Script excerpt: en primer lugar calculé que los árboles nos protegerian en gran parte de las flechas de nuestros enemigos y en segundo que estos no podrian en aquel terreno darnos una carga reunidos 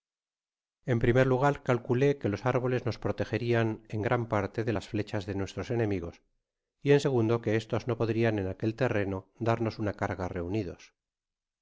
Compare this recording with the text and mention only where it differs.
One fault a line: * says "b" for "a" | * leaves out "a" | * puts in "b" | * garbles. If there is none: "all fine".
all fine